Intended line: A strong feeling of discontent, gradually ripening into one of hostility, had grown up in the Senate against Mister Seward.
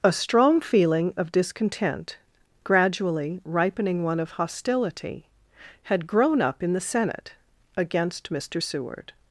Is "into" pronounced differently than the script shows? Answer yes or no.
yes